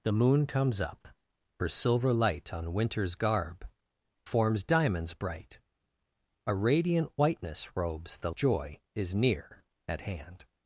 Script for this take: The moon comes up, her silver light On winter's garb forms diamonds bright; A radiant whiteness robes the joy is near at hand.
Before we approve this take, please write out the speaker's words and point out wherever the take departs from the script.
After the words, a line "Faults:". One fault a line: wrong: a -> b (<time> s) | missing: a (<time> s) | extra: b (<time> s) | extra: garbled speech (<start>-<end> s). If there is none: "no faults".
The moon comes up, her silver light On winter's garb forms diamonds bright; A radiant whiteness robes the joy is near at hand.
Faults:
no faults